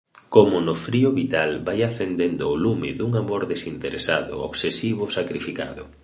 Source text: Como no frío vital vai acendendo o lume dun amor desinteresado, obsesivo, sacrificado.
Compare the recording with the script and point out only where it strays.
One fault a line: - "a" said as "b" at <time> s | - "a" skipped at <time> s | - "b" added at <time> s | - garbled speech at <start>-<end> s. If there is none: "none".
none